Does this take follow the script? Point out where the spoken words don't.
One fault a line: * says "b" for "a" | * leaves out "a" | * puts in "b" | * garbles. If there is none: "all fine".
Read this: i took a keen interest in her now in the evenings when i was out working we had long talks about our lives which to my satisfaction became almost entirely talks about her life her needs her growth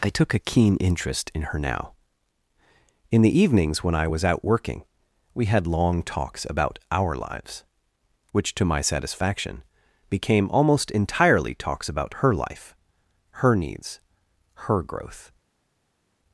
all fine